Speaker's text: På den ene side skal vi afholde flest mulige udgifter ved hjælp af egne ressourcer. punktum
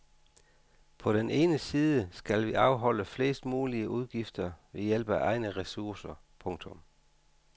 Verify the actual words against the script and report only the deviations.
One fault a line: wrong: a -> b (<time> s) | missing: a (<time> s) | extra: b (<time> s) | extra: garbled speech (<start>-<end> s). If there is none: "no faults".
no faults